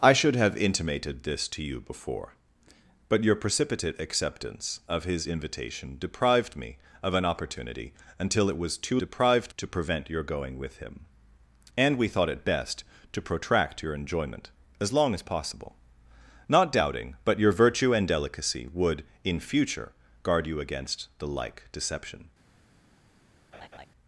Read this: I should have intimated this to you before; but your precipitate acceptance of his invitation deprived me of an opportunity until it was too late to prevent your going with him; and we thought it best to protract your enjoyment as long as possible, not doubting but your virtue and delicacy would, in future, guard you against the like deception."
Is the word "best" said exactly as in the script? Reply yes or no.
yes